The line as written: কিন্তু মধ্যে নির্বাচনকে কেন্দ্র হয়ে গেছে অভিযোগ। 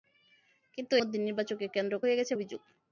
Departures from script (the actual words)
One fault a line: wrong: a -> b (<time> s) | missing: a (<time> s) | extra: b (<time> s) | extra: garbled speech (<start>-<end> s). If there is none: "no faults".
no faults